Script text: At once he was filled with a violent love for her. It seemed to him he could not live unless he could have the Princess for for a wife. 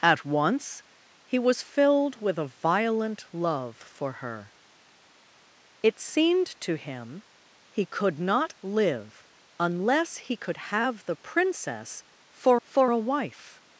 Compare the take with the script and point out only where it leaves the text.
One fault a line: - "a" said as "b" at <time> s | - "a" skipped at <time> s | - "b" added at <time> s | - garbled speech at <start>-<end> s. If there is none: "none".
none